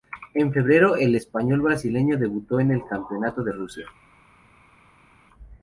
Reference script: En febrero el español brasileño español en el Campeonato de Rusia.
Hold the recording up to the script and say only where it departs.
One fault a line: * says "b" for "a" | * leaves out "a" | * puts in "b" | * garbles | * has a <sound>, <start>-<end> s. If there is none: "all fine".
* says "debutó" for "español"